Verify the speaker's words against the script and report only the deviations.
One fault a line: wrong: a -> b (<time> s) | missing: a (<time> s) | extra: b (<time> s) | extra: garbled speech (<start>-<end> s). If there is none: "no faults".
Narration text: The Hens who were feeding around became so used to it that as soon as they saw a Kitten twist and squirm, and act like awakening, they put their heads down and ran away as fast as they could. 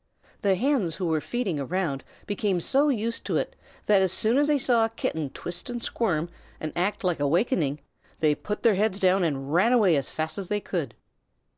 no faults